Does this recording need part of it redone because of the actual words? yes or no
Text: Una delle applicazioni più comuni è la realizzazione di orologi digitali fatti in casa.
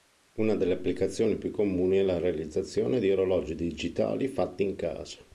no